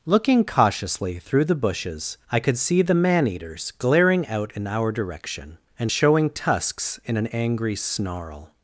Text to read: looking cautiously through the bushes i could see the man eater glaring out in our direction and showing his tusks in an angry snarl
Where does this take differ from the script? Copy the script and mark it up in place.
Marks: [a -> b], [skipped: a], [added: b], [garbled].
looking cautiously through the bushes i could see the man [eater -> eaters] glaring out in our direction and showing [skipped: his] tusks in an angry snarl